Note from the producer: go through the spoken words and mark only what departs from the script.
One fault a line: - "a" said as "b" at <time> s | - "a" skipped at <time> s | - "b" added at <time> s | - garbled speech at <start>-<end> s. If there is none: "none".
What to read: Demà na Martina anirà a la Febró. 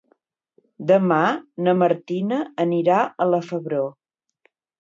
none